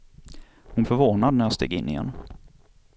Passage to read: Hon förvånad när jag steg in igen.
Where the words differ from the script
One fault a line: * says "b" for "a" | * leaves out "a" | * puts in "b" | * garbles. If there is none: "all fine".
all fine